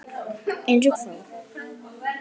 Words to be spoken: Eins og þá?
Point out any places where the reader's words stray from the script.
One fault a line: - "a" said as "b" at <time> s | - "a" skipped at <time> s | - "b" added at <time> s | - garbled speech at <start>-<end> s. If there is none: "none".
none